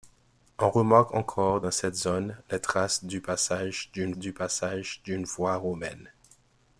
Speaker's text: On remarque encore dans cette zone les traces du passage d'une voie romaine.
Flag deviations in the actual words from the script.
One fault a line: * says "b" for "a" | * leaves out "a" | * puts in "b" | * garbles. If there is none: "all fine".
* puts in "du passage d'une"